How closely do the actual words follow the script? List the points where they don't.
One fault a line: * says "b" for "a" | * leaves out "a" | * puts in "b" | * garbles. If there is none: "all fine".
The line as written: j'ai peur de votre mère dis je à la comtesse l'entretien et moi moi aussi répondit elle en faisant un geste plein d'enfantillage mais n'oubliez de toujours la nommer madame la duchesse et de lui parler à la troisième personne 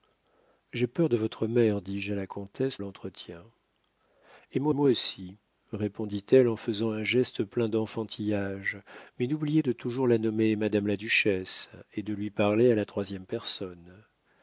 all fine